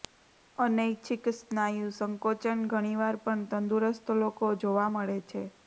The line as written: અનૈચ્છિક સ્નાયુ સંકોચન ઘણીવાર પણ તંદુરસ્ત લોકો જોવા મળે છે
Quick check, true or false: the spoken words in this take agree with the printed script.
true